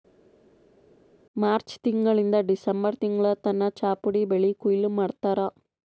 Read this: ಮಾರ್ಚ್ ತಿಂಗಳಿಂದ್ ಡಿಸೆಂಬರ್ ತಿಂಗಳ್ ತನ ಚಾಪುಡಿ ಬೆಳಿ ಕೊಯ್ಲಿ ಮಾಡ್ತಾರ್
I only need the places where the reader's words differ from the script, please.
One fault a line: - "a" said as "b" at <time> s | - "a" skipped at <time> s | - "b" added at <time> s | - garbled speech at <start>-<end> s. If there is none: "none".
none